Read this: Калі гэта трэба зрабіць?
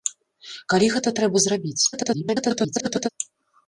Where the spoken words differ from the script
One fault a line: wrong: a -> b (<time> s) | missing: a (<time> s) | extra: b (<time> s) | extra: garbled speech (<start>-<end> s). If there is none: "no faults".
extra: garbled speech (1.9-3.1 s)